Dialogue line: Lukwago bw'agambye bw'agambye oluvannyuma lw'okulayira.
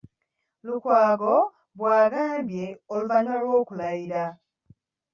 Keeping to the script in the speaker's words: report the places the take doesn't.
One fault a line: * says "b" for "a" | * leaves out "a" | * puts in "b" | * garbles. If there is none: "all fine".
* leaves out "bw'agambye"